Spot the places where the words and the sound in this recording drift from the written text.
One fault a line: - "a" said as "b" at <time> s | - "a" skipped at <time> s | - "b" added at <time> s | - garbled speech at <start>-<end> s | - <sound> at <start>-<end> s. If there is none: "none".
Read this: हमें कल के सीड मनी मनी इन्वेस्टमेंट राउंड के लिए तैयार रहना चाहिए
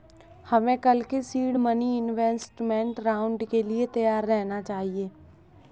- "मनी" skipped at 2.0 s